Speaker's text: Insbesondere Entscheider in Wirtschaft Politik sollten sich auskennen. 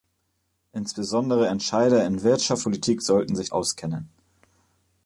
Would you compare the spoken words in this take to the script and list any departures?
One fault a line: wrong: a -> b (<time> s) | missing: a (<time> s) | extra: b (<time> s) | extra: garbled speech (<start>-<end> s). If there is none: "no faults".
no faults